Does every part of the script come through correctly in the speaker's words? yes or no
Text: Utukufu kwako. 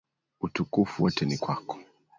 no